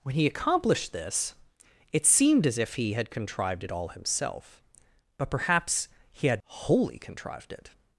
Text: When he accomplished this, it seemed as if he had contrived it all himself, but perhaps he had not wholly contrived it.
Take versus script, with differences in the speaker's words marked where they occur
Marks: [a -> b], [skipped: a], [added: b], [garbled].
When he accomplished this, it seemed as if he had contrived it all himself, but perhaps he had [skipped: not] wholly contrived it.